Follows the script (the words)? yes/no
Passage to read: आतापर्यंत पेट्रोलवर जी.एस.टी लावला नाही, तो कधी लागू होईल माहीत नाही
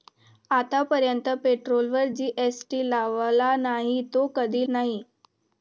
no